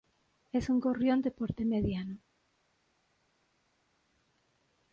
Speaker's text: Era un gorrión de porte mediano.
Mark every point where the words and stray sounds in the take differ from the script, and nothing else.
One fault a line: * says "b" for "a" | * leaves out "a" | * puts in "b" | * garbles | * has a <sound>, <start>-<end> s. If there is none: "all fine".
* says "Es" for "Era"